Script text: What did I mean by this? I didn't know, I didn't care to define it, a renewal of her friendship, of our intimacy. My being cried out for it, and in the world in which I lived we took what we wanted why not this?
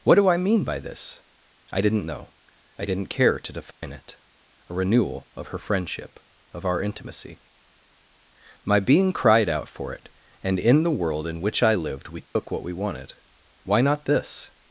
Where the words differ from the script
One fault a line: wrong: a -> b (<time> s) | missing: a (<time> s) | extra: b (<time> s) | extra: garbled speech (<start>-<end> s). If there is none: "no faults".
wrong: did -> do (0.1 s)